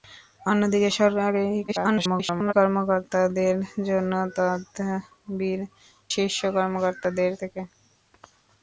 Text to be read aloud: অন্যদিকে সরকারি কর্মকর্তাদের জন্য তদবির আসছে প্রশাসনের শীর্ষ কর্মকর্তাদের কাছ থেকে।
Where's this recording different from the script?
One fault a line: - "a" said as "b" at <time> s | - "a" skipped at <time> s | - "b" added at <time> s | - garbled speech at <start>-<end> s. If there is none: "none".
- garbled speech at 1.7-2.5 s
- "আসছে প্রশাসনের" skipped at 5.6 s
- "কাছ" skipped at 7.3 s